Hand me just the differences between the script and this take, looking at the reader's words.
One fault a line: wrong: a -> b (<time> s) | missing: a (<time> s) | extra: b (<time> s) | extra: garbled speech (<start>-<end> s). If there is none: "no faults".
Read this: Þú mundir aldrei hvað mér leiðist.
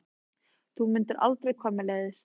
no faults